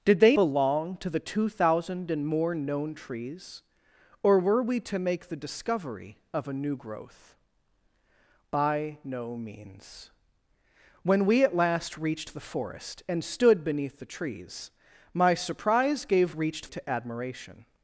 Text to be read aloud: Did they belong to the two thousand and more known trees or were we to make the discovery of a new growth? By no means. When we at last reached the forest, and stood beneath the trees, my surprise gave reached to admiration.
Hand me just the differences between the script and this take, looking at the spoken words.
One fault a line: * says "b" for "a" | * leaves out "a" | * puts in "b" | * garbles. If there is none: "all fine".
all fine